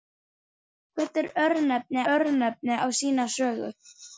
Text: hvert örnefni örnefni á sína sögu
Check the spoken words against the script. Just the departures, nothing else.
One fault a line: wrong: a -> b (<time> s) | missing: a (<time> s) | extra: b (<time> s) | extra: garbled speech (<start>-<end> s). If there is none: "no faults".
no faults